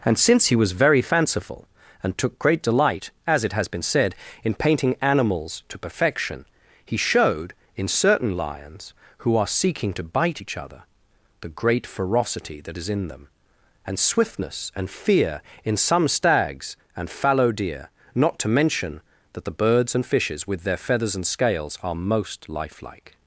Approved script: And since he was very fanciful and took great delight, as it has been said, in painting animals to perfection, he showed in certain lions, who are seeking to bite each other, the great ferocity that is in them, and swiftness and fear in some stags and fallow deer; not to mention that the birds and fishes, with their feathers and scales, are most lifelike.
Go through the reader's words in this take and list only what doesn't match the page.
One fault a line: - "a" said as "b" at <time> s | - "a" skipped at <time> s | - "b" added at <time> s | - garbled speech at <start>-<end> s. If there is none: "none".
none